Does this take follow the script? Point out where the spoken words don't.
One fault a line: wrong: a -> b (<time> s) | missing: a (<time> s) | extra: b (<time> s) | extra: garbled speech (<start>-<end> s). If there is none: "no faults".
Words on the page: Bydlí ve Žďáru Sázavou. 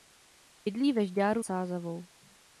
no faults